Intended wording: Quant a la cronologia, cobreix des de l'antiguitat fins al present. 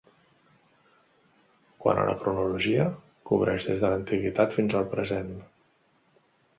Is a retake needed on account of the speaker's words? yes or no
no